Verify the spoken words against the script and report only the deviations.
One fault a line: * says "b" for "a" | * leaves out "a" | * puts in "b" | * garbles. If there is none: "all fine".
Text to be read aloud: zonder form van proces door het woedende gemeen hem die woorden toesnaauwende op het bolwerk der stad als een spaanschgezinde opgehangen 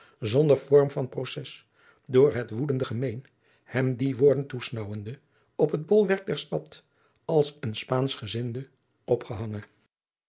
all fine